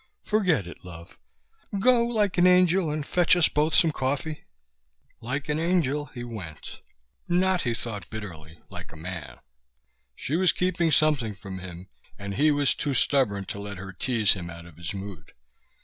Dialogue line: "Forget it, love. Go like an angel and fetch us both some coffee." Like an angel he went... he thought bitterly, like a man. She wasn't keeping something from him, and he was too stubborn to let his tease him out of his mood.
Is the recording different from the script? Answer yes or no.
yes